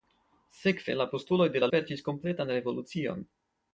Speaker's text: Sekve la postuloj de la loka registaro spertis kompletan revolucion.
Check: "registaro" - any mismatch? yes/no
yes